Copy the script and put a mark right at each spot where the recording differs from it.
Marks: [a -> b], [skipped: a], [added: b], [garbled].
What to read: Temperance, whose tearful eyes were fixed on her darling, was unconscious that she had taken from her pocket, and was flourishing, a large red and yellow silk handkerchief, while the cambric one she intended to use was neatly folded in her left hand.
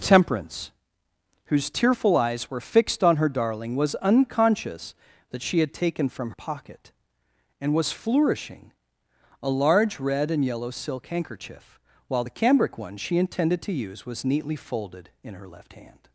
Temperance, whose tearful eyes were fixed on her darling, was unconscious that she had taken from [skipped: her] pocket, and was flourishing, a large red and yellow silk handkerchief, while the cambric one she intended to use was neatly folded in her left hand.